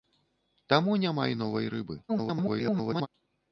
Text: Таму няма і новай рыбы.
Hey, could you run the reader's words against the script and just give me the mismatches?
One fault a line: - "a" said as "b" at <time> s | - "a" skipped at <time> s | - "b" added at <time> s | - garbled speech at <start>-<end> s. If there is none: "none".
- garbled speech at 2.1-3.1 s